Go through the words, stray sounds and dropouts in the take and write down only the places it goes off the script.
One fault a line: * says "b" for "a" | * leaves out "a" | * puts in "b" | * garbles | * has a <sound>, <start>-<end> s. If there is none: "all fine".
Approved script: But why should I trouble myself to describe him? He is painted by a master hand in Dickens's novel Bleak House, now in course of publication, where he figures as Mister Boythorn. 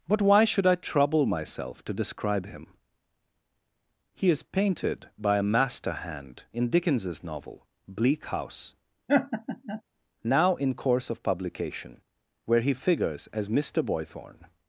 * has a laugh, 9.1-9.8 s